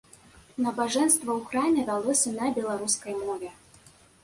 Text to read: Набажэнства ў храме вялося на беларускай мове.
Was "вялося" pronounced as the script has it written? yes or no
yes